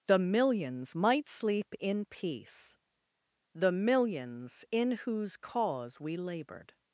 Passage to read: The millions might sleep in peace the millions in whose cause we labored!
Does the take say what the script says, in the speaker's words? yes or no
yes